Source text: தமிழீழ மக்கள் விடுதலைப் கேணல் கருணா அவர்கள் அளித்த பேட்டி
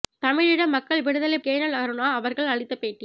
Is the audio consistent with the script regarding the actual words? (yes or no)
yes